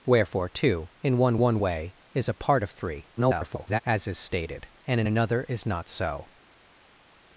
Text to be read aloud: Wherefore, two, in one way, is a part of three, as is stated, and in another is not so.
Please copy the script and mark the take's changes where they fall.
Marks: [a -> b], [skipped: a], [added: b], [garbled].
Wherefore, two, in one [added: one] way, is a part of three, [garbled] as is stated, and in another is not so.